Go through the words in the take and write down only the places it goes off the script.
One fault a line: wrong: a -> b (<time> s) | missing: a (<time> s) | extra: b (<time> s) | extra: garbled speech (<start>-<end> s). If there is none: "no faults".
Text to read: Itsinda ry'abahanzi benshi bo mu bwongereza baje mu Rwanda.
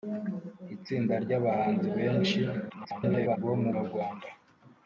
extra: garbled speech (2.7-3.4 s)
missing: bwongereza baje (3.7 s)